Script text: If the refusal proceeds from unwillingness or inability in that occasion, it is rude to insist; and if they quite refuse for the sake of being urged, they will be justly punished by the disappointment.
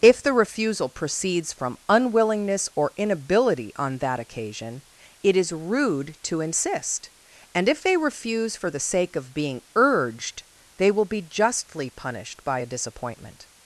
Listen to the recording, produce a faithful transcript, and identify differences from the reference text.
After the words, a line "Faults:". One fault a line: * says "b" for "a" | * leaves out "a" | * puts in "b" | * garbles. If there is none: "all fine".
If the refusal proceeds from unwillingness or inability on that occasion, it is rude to insist; and if they refuse for the sake of being urged, they will be justly punished by a disappointment.
Faults:
* says "on" for "in"
* leaves out "quite"
* says "a" for "the"